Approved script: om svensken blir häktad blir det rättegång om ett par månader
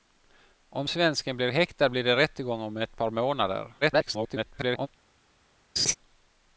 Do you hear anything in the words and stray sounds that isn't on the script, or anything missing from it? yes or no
yes